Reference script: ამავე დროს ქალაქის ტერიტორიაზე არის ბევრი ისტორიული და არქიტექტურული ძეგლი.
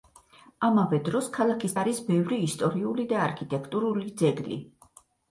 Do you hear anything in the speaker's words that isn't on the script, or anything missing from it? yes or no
yes